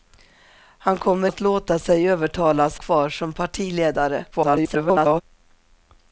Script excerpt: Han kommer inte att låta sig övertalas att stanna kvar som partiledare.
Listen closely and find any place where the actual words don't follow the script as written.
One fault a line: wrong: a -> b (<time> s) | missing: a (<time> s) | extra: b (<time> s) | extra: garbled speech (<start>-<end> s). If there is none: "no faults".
missing: inte (1.3 s)
missing: att stanna (2.8 s)
extra: garbled speech (4.3-5.2 s)